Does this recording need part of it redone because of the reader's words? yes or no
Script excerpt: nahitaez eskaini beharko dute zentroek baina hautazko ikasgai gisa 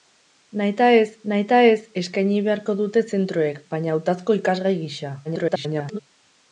yes